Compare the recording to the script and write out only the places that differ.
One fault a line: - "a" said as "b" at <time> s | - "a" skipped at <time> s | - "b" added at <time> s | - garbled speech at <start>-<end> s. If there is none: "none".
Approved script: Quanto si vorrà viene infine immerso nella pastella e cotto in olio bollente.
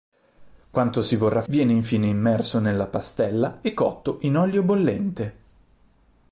none